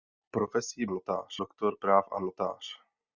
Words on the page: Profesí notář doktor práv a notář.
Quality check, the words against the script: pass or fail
pass